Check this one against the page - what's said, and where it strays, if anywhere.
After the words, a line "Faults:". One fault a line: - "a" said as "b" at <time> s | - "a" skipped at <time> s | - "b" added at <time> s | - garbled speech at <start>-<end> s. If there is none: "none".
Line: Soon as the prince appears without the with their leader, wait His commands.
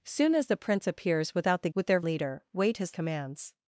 Soon as the prince appears without the with their leader, wait His commands.
Faults:
none